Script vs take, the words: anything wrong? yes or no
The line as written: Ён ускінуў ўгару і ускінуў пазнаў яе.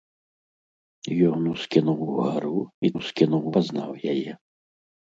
no